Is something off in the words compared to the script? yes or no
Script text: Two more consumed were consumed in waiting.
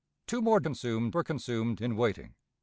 no